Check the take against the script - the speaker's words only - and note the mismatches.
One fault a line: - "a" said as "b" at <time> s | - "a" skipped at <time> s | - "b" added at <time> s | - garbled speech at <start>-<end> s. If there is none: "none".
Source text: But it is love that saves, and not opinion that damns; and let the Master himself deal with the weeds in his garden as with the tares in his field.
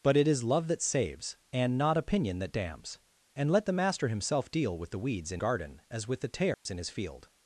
- "his" skipped at 5.4 s